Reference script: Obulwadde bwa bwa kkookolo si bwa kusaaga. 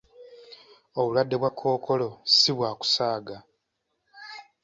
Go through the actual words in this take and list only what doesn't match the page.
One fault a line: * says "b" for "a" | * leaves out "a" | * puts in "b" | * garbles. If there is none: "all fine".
* leaves out "bwa"